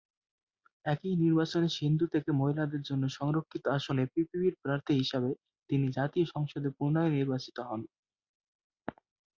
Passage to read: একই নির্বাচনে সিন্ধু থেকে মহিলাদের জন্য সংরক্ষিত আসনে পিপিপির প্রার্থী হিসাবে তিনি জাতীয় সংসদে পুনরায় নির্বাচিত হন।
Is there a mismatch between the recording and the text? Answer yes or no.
no